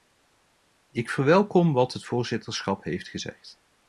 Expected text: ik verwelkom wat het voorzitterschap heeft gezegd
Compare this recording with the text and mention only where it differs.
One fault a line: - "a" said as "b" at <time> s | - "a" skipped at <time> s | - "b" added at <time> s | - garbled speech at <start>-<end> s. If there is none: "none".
none